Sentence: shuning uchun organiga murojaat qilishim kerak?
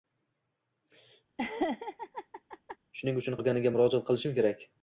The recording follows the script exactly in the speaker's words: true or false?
true